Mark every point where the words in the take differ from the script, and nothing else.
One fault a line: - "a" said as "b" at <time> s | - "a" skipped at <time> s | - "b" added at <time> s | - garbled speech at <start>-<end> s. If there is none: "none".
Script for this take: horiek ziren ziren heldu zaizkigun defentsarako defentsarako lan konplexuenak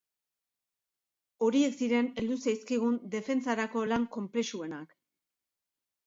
- "ziren" skipped at 2.1 s
- "defentsarako" skipped at 3.8 s